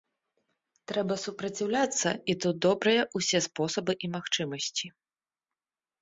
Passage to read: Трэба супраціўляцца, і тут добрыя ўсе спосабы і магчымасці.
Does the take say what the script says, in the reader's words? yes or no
yes